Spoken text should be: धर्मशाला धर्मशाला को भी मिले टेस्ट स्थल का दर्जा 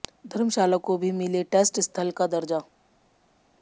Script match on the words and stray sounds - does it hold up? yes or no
no